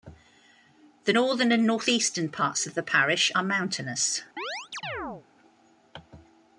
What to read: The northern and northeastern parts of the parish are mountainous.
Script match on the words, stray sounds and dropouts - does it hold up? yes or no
no